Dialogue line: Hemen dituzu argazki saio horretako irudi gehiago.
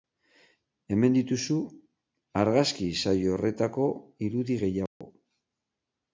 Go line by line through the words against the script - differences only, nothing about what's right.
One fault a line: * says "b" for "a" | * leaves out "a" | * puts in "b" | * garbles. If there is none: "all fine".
all fine